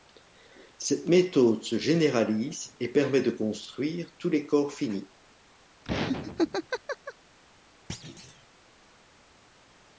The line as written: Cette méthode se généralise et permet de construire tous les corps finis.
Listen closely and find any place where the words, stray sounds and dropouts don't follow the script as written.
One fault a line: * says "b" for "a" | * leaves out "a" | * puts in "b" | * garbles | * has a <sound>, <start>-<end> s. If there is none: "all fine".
* has a laugh, 5.8-7.1 s
* has a thud, 7.9-8.5 s